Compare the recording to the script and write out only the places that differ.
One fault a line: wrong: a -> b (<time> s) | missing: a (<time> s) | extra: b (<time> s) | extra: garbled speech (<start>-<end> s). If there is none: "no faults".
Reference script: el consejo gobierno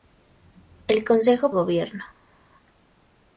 no faults